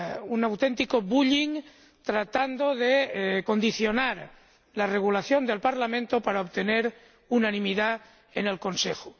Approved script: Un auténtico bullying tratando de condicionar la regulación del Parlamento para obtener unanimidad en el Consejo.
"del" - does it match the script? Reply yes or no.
yes